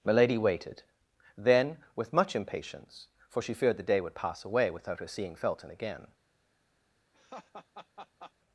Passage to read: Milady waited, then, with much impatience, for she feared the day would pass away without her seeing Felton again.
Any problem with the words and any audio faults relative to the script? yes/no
yes